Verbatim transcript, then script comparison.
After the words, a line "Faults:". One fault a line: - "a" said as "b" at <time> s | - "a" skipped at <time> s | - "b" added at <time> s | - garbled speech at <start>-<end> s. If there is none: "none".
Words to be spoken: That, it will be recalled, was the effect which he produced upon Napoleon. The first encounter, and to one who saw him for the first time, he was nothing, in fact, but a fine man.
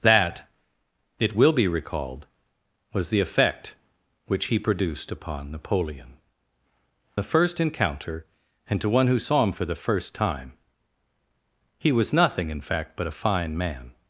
That, it will be recalled, was the effect which he produced upon Napoleon. The first encounter, and to one who saw him for the first time, he was nothing, in fact, but a fine man.
Faults:
none